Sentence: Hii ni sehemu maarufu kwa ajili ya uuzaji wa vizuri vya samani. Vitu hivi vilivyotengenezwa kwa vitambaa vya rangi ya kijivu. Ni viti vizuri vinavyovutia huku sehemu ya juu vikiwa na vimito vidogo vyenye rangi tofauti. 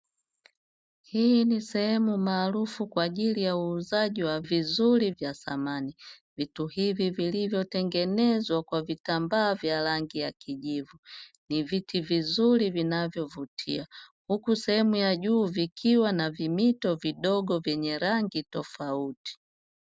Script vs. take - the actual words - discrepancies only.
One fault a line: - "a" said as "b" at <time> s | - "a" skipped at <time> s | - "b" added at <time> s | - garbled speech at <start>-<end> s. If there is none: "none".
none